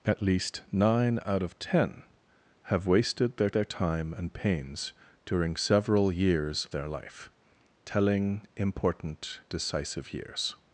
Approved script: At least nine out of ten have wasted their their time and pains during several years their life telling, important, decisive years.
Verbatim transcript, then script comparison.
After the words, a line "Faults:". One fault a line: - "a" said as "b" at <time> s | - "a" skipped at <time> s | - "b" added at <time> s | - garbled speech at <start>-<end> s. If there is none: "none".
At least nine out of ten have wasted their their time and pains during several years their life telling, important, decisive years.
Faults:
none